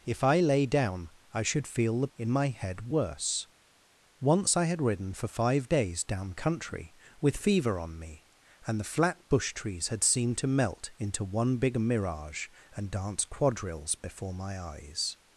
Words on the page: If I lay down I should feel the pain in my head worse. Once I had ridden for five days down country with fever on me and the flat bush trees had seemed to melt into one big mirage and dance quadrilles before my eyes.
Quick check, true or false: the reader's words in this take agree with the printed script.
false